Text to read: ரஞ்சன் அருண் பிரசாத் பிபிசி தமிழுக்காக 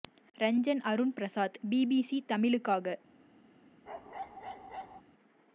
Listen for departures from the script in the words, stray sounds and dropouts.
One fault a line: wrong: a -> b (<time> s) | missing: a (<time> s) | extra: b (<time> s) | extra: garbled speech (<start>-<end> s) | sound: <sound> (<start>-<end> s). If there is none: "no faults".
sound: bark (3.9-5.0 s)